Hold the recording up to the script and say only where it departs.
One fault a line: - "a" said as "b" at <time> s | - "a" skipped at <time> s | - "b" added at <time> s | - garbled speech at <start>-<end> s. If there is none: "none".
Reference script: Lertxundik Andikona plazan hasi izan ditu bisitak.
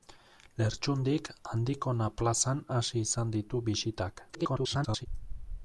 - garbled speech at 4.3-5.1 s